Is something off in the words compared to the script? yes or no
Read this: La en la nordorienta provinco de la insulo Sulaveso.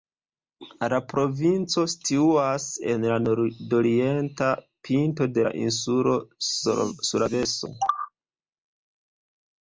yes